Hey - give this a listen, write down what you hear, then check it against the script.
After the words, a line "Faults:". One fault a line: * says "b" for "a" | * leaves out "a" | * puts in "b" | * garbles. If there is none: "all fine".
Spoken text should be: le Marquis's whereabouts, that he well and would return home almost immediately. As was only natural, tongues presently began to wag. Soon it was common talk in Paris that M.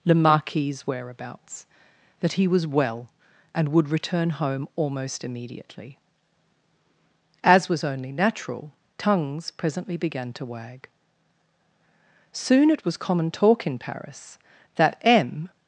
le Marquis's whereabouts, that he was well and would return home almost immediately. As was only natural, tongues presently began to wag. Soon it was common talk in Paris that M.
Faults:
* puts in "was"